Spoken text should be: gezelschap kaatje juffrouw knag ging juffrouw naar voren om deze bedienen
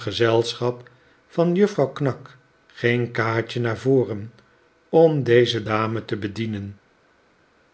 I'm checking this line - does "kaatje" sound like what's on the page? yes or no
no